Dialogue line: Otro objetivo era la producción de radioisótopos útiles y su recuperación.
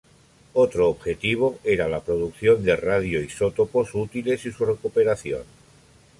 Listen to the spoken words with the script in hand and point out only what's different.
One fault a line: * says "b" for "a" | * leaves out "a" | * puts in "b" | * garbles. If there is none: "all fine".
all fine